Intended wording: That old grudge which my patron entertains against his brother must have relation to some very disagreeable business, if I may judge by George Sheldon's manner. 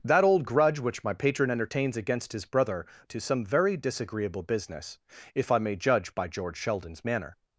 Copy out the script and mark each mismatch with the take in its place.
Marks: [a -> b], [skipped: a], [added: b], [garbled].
That old grudge which my patron entertains against his brother [skipped: must have relation] to some very disagreeable business, if I may judge by George Sheldon's manner.